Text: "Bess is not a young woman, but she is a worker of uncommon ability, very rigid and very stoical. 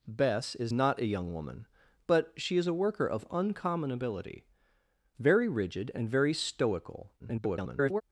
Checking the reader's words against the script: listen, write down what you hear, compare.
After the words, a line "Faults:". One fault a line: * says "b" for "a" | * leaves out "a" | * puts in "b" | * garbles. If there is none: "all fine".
"Bess is not a young woman, but she is a worker of uncommon ability, very rigid and very stoical. [garbled]
Faults:
* garbles